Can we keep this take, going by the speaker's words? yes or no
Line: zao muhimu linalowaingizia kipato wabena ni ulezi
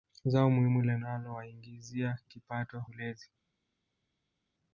no